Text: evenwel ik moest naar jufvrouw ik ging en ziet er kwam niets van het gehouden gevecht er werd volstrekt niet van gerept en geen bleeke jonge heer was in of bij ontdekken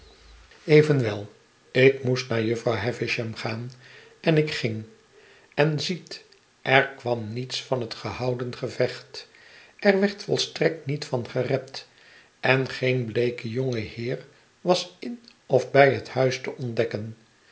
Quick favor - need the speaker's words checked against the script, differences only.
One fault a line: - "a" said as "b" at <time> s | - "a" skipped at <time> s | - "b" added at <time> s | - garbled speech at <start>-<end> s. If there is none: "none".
- "havisham gaan en" added at 2.8 s
- "het huis te" added at 15.9 s